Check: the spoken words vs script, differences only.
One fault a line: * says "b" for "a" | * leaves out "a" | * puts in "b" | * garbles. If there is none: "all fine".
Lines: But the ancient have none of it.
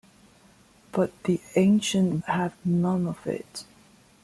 all fine